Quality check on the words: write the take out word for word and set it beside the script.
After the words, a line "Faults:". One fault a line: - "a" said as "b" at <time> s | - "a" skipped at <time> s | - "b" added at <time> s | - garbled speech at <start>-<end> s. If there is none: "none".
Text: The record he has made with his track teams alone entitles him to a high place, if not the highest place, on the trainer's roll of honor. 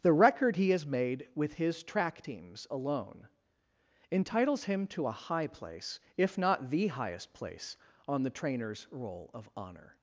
The record he has made with his track teams alone entitles him to a high place, if not the highest place, on the trainer's roll of honor.
Faults:
none